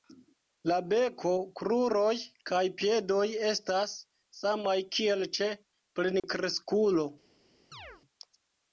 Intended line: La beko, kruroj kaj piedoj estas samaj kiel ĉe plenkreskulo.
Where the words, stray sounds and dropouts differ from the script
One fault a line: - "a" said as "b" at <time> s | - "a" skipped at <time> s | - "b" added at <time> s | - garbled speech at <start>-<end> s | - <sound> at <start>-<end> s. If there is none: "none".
- dropout at 6.2-6.2 s
- chirp at 7.7-8.0 s